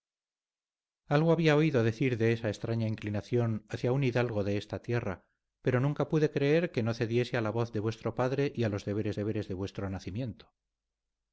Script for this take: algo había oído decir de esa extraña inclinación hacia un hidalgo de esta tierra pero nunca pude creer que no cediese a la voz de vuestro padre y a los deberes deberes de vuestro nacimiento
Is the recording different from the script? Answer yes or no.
no